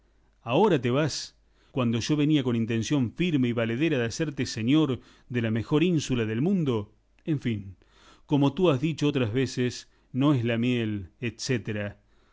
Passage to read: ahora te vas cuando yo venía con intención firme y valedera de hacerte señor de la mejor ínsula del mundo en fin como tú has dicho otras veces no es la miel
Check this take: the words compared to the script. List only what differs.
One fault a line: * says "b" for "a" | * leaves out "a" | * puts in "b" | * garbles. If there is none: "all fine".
all fine